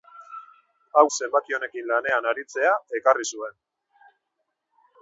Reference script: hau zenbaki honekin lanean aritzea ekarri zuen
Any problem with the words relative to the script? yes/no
no